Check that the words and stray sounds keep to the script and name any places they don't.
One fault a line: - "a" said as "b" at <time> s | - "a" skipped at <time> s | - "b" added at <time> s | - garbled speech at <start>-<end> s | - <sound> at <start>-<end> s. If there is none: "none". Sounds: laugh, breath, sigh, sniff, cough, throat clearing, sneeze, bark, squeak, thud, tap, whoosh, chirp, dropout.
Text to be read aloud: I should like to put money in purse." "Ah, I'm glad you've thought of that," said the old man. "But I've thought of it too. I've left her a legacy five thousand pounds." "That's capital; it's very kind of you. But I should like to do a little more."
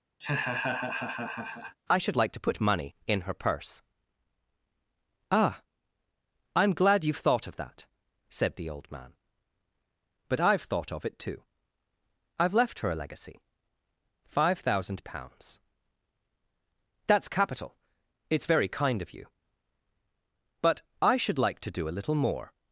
- laugh at 0.2-1.8 s
- "her" added at 3.2 s